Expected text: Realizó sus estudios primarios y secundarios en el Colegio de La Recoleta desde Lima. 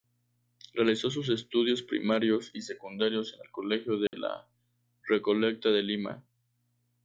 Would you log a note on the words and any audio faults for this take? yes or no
yes